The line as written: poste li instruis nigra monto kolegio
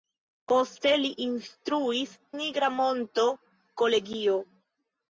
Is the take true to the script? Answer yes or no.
yes